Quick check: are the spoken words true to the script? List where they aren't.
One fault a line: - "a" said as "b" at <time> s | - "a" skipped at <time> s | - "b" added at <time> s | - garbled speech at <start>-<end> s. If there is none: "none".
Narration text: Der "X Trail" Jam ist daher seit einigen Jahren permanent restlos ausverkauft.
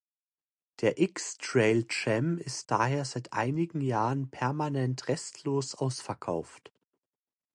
none